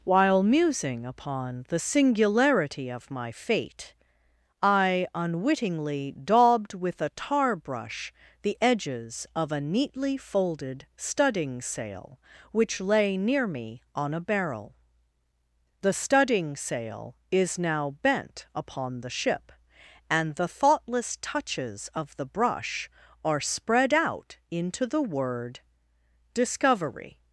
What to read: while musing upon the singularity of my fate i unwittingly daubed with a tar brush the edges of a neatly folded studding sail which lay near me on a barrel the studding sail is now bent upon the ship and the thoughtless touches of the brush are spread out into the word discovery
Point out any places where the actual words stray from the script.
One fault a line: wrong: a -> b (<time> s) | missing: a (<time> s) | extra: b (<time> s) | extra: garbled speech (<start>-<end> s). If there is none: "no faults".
no faults